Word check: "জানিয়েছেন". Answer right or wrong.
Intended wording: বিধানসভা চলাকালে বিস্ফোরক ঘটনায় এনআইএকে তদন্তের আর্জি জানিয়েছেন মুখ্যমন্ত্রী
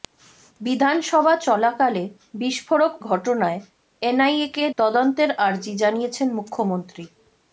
right